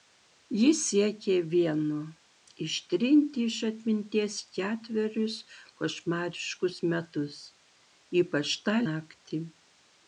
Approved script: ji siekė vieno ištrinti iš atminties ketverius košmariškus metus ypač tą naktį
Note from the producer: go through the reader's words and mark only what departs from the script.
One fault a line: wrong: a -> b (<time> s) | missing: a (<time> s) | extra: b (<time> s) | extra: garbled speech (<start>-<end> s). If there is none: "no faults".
no faults